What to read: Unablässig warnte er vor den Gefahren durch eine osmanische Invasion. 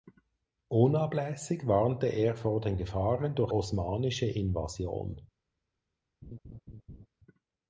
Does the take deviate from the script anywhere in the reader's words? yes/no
yes